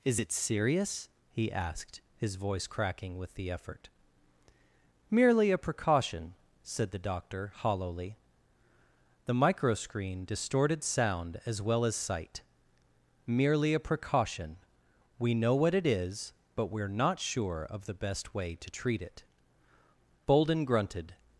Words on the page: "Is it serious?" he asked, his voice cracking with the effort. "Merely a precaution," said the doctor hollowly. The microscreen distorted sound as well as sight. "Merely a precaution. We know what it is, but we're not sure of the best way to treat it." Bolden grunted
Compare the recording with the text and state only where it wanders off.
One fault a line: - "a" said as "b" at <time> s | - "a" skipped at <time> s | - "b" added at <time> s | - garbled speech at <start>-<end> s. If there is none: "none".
none